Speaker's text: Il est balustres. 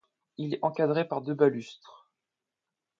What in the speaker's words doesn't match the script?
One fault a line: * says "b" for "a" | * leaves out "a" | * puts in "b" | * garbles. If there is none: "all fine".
* puts in "encadré par deux"